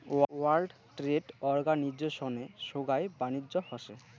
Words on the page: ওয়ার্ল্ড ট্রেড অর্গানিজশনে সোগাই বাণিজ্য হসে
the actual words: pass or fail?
pass